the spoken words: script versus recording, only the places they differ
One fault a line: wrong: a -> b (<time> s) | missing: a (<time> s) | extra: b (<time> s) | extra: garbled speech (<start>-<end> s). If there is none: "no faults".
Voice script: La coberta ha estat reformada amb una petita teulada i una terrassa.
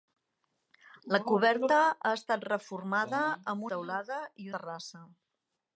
missing: una petita (3.7 s)
missing: una (4.5 s)